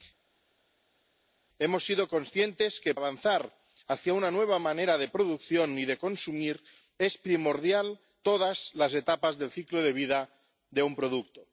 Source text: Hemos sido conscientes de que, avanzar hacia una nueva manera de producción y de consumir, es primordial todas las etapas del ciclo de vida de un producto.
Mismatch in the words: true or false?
false